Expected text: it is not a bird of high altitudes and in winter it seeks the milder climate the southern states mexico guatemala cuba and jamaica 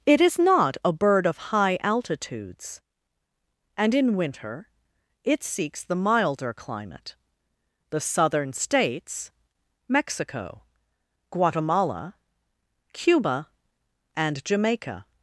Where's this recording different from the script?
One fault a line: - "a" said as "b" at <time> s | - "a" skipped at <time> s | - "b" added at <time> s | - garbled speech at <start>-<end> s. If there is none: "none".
none